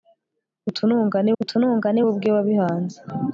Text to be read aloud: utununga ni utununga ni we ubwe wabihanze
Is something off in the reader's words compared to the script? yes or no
no